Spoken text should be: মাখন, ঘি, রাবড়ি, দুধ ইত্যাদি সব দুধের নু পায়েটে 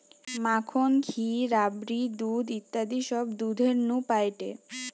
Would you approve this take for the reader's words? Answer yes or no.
yes